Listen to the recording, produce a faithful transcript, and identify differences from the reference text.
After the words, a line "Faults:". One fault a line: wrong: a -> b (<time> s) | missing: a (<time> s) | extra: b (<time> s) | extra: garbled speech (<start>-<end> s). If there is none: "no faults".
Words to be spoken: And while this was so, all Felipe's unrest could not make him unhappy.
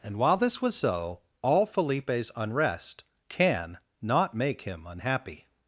And while this was so, all Felipe's unrest can not make him unhappy.
Faults:
wrong: could -> can (3.3 s)